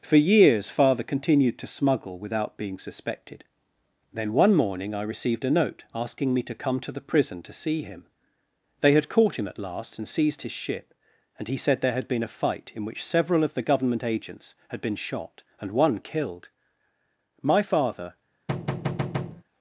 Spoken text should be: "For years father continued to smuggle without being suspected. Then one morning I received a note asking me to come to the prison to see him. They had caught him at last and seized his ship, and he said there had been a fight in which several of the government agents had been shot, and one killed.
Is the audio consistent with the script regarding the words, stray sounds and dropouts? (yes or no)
no